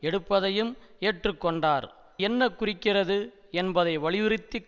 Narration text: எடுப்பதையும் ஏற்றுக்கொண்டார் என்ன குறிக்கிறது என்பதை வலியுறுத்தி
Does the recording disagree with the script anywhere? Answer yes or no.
no